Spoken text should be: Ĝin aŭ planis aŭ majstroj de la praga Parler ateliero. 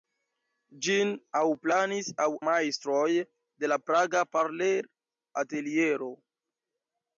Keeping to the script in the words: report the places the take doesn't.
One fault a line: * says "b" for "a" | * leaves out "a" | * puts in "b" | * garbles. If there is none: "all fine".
all fine